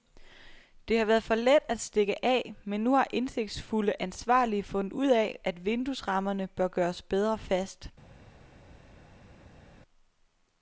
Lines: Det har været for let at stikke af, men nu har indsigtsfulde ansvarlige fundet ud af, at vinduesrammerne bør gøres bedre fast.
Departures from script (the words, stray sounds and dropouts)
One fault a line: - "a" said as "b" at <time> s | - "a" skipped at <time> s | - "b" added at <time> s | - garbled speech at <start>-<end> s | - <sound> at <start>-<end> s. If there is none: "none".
none